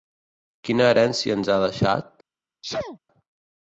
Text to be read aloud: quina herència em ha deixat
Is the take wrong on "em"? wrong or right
wrong